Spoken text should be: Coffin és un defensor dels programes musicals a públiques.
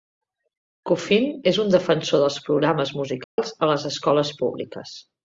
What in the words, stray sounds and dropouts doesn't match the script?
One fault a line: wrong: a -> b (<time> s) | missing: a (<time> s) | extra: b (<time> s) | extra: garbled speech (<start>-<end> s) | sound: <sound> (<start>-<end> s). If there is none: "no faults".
sound: dropout (3.2-3.4 s)
extra: les escoles (3.7 s)